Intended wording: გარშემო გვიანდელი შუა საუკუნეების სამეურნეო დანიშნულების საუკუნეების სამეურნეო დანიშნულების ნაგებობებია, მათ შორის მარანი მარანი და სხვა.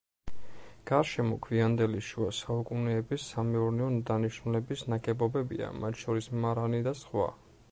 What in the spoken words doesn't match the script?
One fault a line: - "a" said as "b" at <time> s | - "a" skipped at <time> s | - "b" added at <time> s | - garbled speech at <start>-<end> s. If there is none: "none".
- "საუკუნეების სამეურნეო დანიშნულების" skipped at 4.8 s
- "მარანი" skipped at 6.8 s